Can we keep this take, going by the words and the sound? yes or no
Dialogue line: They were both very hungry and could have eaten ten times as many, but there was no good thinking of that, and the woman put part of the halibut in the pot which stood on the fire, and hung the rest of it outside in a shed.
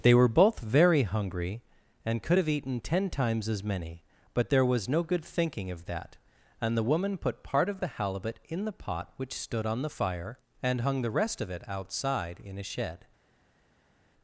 yes